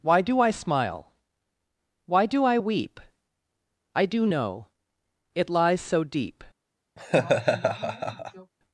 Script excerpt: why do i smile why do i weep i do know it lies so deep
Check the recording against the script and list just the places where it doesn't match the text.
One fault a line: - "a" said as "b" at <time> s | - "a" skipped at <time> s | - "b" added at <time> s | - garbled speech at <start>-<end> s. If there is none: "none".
none